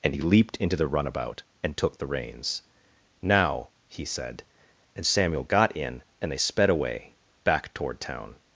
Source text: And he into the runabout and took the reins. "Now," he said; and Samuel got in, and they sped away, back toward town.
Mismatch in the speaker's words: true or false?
true